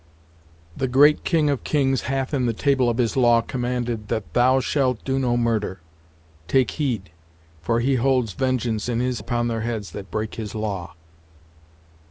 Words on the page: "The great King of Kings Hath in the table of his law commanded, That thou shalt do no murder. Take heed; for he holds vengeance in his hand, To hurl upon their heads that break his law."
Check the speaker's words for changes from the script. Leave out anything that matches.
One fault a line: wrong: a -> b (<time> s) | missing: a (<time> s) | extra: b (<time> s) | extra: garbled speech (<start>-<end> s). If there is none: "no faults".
missing: hand To hurl (9.2 s)